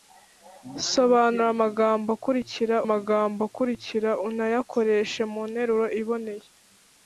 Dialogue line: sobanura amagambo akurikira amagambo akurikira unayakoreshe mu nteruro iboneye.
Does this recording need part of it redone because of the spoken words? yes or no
no